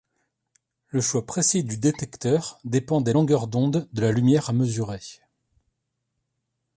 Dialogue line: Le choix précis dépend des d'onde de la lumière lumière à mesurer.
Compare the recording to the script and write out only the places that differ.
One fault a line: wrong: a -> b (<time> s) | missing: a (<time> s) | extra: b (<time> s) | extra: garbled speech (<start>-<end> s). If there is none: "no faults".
extra: du détecteur (1.6 s)
extra: longueurs (3.1 s)
missing: lumière (4.5 s)